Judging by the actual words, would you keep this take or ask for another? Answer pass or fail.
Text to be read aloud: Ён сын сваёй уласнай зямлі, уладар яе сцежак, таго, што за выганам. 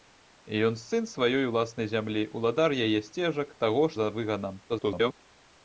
fail